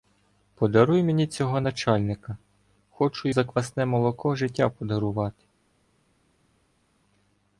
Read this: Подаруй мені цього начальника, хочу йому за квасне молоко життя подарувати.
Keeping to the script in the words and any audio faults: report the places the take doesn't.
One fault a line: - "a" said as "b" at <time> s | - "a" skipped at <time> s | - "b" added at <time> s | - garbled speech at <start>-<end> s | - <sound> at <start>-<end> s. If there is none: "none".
- "йому" skipped at 3.3 s